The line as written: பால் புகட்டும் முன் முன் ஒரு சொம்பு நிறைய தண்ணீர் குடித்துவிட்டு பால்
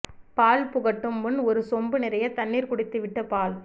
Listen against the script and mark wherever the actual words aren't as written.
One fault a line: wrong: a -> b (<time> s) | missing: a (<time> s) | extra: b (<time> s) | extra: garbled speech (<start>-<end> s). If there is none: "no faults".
missing: முன் (1.4 s)